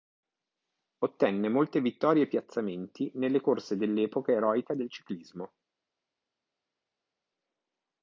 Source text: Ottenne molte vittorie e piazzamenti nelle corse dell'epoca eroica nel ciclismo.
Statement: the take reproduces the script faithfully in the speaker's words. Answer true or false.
false